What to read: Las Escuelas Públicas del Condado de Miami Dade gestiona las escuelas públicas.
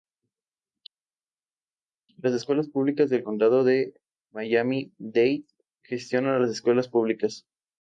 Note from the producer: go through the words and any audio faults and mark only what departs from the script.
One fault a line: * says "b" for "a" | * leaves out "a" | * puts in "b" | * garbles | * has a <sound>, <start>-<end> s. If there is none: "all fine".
all fine